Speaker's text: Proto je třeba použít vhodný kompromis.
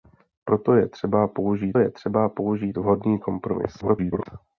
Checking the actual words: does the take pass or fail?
fail